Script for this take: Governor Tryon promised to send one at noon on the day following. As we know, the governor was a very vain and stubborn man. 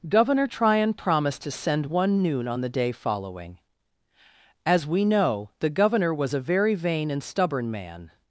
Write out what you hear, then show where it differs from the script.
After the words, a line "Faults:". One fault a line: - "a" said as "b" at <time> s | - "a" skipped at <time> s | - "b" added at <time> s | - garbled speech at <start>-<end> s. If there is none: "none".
Governor Tryon promised to send one noon on the day following. As we know, the governor was a very vain and stubborn man.
Faults:
- "at" skipped at 2.2 s